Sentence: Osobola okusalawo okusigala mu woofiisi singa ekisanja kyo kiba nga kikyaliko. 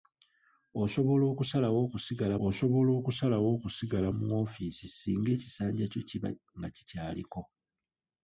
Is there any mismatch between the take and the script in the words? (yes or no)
yes